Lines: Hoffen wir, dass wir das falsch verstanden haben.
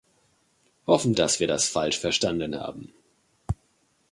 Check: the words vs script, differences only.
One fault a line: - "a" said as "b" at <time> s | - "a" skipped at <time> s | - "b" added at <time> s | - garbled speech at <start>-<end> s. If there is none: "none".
- "wir" skipped at 1.1 s